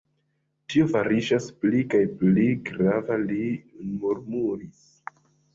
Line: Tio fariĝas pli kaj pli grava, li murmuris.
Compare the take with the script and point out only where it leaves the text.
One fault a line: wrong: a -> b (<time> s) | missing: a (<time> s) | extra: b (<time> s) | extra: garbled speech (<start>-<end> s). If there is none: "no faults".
no faults